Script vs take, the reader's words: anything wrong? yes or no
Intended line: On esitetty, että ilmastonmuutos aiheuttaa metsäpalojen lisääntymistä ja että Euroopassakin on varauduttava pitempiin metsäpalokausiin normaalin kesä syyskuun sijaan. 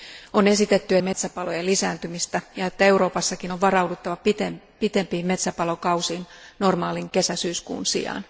yes